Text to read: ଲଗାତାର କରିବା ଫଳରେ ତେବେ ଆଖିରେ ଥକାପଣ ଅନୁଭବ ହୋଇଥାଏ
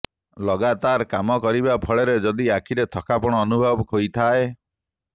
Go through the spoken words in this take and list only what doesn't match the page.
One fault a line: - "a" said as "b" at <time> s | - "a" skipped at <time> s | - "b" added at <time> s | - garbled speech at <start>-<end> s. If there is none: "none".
- "କାମ" added at 1.1 s
- "ତେବେ" said as "ଯଦି" at 2.2 s